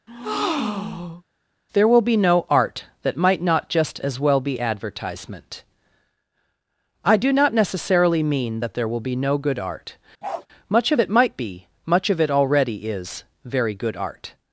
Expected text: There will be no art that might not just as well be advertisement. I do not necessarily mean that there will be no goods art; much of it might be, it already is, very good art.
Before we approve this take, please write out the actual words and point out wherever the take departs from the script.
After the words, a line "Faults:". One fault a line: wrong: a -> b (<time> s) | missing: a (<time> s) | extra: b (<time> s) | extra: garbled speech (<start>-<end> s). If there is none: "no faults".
There will be no art that might not just as well be advertisement. I do not necessarily mean that there will be no good art; much of it might be, much of it already is, very good art.
Faults:
wrong: goods -> good (9.4 s)
extra: much of (11.8 s)